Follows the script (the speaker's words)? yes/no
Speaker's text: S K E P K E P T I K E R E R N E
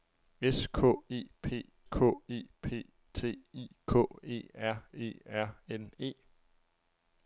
yes